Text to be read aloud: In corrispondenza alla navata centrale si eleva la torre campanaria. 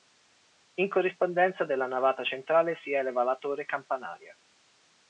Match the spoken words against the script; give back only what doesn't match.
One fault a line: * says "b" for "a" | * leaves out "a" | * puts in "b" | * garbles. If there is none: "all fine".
* says "della" for "alla"